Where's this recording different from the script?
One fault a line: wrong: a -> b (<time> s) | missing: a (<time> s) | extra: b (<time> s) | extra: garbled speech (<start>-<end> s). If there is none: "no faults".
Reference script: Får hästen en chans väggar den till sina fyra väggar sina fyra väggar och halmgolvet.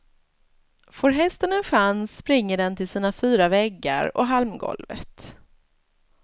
wrong: väggar -> springer (2.2 s)
missing: sina fyra väggar (4.2 s)